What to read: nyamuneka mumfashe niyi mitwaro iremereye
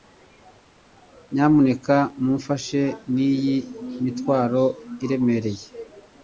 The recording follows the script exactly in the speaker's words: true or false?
true